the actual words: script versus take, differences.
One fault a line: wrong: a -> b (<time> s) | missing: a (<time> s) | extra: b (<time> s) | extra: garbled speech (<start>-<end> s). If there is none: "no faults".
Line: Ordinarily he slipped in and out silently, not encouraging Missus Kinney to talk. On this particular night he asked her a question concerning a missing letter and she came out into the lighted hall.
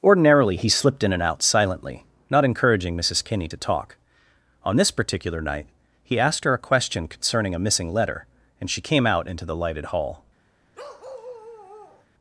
no faults